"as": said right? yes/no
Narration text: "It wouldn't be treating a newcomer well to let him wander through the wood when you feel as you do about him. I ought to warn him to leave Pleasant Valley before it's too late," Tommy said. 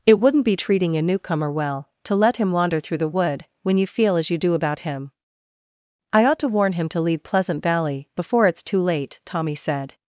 yes